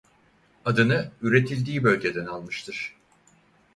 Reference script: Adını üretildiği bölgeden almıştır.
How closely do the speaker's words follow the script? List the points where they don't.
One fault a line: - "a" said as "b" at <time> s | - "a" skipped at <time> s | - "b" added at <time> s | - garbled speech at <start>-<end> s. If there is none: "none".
none